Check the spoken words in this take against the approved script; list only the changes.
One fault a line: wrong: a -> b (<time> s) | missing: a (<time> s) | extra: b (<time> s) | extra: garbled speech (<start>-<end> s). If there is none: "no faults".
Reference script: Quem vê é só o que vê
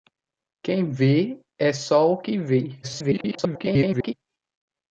extra: garbled speech (2.8-4.1 s)